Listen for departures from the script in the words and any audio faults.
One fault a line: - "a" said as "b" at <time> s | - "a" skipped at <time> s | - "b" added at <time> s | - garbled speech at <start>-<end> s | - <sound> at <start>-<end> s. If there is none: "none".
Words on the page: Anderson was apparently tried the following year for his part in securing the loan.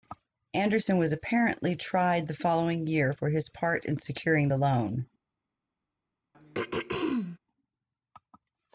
- throat clearing at 6.3-7.4 s